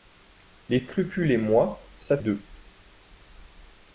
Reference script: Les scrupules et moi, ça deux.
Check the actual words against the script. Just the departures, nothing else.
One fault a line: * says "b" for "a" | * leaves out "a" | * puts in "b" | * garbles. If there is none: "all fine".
all fine